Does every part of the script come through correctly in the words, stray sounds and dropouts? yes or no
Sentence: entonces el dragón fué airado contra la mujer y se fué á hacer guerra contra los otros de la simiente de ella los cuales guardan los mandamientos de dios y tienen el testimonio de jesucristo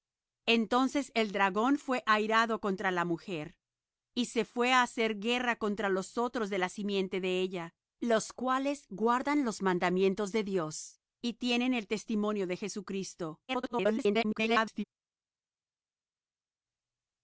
no